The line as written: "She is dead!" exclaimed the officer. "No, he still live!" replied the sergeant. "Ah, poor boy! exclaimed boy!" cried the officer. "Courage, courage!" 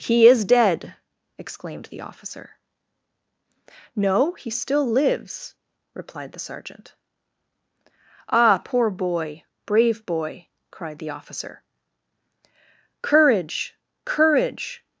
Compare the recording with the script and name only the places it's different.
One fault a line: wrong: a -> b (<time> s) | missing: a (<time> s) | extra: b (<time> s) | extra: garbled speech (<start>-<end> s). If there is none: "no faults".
wrong: She -> He (0.0 s)
wrong: live -> lives (4.8 s)
wrong: exclaimed -> brave (9.7 s)